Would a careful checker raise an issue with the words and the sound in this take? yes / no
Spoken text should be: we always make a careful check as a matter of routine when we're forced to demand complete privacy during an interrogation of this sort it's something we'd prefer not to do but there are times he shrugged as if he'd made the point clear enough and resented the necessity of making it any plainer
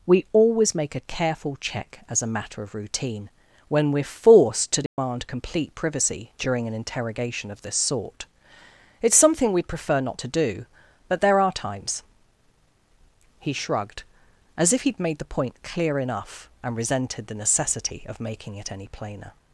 yes